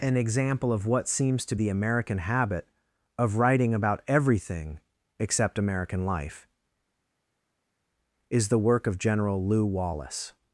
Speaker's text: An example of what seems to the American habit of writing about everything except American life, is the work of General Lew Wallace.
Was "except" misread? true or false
false